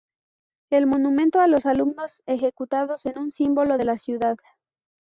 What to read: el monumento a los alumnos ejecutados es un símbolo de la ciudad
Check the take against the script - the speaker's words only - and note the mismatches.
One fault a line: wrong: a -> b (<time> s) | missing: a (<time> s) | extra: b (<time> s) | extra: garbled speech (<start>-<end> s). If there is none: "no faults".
no faults